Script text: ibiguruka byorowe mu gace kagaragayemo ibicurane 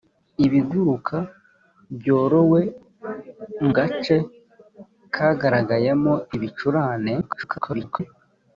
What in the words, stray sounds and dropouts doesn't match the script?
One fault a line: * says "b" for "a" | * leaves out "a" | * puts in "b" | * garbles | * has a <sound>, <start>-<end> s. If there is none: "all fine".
* leaves out "mu"
* garbles